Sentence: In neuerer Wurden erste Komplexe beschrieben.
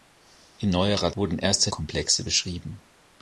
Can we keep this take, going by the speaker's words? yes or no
yes